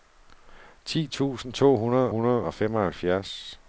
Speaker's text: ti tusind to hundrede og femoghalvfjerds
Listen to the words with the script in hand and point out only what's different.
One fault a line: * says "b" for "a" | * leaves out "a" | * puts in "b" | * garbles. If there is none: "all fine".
* puts in "hundrede"